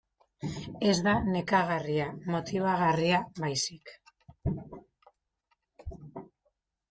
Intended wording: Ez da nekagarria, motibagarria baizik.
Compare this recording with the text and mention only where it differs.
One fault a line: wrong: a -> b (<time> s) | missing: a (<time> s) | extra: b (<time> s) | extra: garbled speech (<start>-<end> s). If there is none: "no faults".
no faults